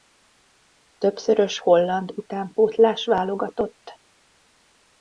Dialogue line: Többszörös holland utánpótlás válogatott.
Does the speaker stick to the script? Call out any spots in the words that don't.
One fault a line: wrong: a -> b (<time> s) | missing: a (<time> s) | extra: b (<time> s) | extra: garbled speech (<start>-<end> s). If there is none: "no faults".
no faults